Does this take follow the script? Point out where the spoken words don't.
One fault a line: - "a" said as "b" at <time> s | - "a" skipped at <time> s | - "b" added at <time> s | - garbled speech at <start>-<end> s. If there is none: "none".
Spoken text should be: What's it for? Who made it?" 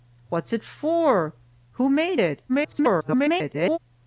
- garbled speech at 2.5-3.8 s